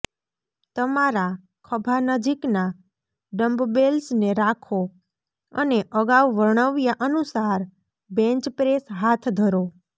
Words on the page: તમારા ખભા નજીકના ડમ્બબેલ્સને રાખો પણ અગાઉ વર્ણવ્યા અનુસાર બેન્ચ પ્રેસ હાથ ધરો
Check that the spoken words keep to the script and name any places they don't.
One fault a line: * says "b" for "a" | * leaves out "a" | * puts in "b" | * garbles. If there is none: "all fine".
* says "અને" for "પણ"